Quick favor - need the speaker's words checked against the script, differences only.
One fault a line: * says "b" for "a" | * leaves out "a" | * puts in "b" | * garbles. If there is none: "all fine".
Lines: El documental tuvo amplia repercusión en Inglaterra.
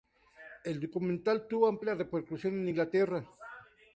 all fine